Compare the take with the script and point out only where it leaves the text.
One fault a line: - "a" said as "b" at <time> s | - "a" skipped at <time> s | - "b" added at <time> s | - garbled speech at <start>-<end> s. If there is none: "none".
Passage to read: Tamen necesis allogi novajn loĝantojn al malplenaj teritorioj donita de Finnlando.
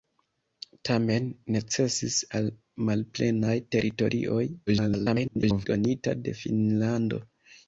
- "allogi novajn loĝantojn" skipped at 2.1 s
- garbled speech at 4.7-5.7 s